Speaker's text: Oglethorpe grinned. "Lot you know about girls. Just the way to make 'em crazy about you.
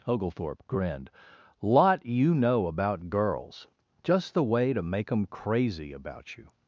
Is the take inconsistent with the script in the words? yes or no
no